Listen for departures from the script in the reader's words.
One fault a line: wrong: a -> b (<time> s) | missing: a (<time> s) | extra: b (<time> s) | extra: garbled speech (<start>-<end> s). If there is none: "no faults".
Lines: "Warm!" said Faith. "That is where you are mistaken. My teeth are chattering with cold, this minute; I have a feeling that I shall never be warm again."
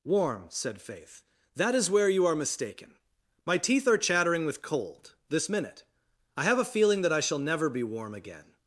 no faults